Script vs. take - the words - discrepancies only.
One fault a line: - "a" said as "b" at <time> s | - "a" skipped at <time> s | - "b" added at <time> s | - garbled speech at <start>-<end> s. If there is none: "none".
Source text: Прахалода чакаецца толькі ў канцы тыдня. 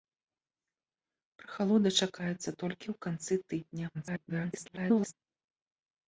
- garbled speech at 3.9-5.1 s